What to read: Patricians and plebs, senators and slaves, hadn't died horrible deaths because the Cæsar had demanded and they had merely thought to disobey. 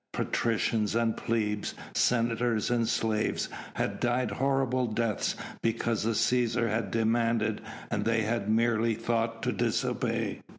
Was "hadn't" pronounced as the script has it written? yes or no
no